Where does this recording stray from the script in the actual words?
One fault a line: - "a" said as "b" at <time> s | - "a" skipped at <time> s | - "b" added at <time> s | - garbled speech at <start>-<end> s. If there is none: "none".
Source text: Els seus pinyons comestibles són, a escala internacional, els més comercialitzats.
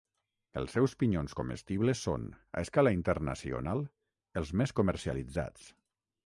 none